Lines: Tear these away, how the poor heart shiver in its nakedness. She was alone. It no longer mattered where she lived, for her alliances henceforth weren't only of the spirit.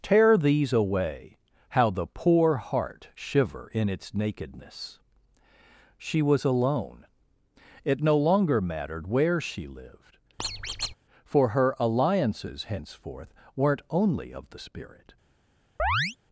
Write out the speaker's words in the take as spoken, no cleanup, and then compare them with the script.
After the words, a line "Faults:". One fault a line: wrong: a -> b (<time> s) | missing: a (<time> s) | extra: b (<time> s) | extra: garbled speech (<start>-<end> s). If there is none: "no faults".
Tear these away, how the poor heart shiver in its nakedness. She was alone. It no longer mattered where she lived, for her alliances henceforth weren't only of the spirit.
Faults:
no faults